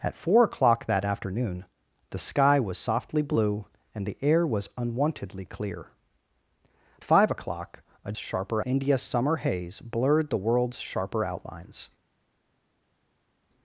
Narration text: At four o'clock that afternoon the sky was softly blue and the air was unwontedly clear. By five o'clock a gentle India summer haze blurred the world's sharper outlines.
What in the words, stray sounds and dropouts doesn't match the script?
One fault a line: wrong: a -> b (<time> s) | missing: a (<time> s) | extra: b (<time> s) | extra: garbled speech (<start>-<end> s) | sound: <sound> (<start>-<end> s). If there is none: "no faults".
missing: By (5.9 s)
wrong: gentle -> sharper (8.2 s)